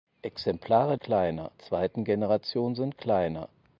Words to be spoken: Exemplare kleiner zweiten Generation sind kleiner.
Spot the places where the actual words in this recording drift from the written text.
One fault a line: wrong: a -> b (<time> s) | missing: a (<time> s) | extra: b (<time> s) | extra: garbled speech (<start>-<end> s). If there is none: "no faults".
no faults